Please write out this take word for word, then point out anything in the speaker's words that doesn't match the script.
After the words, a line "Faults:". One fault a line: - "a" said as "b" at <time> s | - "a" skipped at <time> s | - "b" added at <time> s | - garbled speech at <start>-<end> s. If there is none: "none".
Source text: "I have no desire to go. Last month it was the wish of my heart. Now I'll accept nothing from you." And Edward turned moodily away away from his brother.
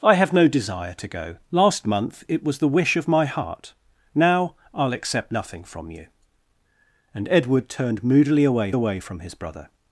"I have no desire to go. Last month it was the wish of my heart. Now I'll accept nothing from you." And Edward turned moodily away away from his brother.
Faults:
none